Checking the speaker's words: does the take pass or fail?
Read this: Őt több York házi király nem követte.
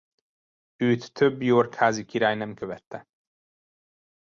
pass